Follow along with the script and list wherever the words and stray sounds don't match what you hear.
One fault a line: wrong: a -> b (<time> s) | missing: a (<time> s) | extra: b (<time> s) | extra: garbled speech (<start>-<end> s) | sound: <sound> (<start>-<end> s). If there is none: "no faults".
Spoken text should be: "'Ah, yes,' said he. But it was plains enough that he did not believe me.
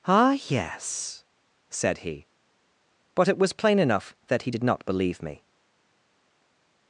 wrong: plains -> plain (3.5 s)